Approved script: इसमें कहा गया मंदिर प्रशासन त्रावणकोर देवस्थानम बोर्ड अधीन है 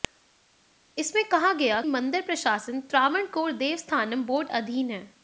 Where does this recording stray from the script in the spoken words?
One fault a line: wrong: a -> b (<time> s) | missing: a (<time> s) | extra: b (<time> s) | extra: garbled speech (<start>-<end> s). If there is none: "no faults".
no faults